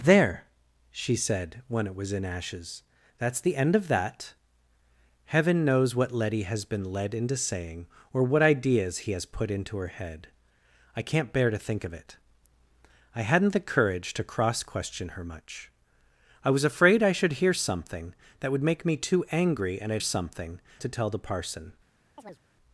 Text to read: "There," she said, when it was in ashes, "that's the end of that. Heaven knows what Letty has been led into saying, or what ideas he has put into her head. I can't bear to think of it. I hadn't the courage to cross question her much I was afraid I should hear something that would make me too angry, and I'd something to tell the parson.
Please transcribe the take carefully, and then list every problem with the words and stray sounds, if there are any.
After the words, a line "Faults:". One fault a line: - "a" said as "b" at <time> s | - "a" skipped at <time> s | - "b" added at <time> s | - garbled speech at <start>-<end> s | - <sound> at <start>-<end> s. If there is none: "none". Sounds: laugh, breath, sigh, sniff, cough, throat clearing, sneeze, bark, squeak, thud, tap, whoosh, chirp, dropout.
"There," she said, when it was in ashes, "that's the end of that. Heaven knows what Letty has been led into saying, or what ideas he has put into her head. I can't bear to think of it. I hadn't the courage to cross question her much I was afraid I should hear something that would make me too angry, and I'd something to tell the parson.
Faults:
- chirp at 22.2-22.4 s